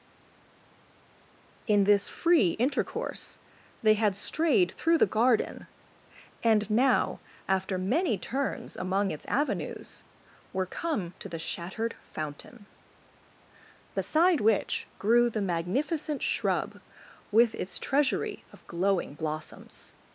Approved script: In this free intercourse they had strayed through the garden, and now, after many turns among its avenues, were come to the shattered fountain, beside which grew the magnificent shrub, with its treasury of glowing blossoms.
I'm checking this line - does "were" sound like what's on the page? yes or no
yes